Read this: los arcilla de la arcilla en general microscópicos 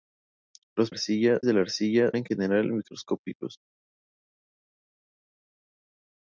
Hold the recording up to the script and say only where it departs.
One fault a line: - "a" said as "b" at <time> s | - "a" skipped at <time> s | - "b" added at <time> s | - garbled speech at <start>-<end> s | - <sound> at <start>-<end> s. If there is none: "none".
none